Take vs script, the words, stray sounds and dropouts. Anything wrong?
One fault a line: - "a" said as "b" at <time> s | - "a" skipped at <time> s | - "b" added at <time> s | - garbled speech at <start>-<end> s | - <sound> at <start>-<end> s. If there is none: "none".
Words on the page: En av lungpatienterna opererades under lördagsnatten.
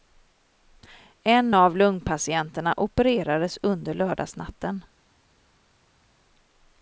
none